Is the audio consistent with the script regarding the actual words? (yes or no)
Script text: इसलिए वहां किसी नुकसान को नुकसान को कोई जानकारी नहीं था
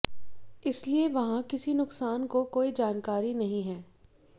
no